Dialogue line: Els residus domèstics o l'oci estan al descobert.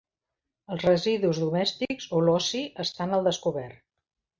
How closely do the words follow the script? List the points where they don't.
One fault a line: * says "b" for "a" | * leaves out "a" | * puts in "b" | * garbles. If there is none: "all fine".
all fine